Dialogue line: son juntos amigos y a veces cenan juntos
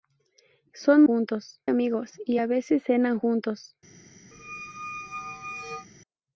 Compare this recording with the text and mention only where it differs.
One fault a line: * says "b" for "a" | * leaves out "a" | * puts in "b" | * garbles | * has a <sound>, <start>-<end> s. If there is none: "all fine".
* has a squeak, 4.3-5.9 s